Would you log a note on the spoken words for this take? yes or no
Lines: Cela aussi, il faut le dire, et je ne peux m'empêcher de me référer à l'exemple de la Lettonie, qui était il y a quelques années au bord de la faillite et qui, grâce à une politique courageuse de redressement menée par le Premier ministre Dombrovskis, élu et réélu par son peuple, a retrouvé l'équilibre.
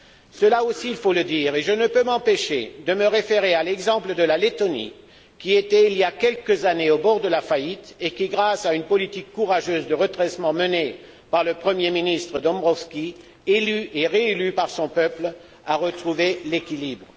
no